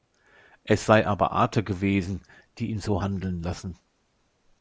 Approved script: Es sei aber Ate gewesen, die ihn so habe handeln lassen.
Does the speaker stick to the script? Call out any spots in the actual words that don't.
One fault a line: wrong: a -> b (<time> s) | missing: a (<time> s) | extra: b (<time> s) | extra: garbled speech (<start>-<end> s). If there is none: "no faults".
missing: habe (3.0 s)